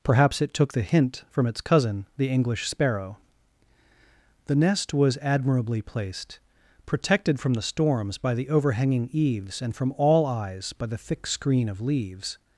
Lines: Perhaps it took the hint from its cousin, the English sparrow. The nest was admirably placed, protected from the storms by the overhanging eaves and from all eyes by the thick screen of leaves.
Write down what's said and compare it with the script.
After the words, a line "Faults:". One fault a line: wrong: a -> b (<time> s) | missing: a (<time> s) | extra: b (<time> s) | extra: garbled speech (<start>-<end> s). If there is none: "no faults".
Perhaps it took the hint from its cousin, the English sparrow. The nest was admirably placed, protected from the storms by the overhanging eaves and from all eyes by the thick screen of leaves.
Faults:
no faults